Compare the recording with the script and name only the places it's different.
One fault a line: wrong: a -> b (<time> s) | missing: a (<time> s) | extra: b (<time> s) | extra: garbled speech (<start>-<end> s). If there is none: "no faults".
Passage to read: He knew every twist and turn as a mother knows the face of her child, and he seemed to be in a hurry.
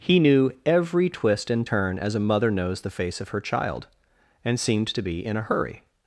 missing: he (4.6 s)